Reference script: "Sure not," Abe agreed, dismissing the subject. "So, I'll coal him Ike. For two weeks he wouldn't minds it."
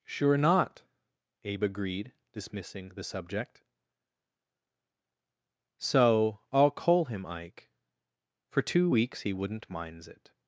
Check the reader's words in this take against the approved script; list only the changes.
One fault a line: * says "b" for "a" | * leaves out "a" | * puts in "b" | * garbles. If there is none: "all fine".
all fine